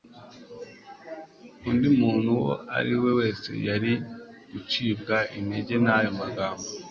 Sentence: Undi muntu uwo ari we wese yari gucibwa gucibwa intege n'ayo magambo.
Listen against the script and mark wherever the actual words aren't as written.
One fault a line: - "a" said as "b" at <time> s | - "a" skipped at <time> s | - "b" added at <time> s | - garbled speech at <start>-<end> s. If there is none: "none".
- "gucibwa" skipped at 5.2 s